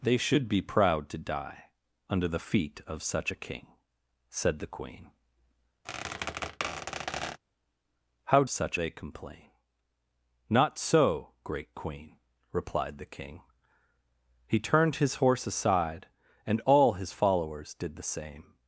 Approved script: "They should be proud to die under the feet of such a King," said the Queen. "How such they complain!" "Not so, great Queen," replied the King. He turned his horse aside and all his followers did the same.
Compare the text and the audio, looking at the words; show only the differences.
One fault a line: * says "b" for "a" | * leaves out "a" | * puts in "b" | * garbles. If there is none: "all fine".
all fine